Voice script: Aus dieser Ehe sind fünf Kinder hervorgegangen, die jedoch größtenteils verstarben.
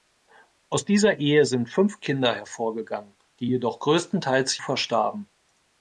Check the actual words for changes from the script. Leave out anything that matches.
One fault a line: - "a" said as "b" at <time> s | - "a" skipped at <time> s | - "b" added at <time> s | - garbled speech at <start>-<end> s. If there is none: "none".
none